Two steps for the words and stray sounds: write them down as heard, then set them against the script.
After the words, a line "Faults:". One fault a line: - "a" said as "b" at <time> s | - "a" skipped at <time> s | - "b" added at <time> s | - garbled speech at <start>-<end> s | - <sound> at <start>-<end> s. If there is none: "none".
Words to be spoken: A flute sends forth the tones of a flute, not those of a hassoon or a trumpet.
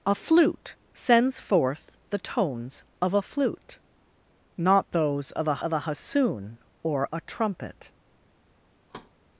A flute sends forth the tones of a flute, not those of a of a hassoon or a trumpet.
Faults:
- "of a" added at 5.6 s
- thud at 8.9-9.1 s